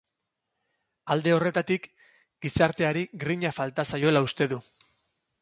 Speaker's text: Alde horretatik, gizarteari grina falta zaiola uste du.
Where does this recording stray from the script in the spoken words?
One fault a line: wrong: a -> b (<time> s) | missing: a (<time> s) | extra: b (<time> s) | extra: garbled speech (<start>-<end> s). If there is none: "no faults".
no faults